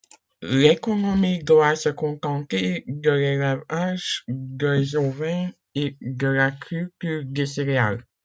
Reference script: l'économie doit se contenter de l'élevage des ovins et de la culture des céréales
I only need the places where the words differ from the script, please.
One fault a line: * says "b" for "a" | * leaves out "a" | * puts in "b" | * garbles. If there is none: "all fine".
all fine